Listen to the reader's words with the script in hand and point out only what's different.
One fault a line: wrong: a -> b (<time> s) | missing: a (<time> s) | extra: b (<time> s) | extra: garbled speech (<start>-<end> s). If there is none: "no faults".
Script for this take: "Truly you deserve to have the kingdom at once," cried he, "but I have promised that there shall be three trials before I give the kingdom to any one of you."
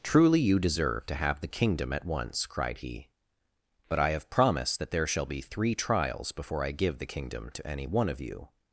no faults